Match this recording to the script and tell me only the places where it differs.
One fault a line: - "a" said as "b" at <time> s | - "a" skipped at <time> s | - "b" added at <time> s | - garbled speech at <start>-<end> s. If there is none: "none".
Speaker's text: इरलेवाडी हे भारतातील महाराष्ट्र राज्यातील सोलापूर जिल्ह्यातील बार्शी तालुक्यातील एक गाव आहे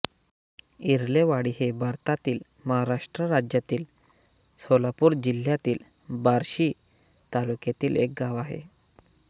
none